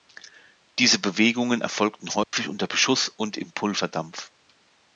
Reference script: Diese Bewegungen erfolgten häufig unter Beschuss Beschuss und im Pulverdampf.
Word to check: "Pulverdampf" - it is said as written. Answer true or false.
true